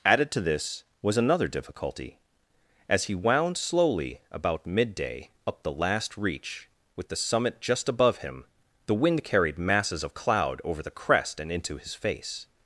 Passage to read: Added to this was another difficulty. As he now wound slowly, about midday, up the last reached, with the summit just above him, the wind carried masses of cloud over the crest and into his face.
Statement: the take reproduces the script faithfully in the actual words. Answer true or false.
false